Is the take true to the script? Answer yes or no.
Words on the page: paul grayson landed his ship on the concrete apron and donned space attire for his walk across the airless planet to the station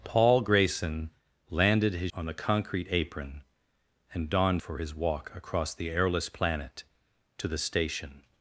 no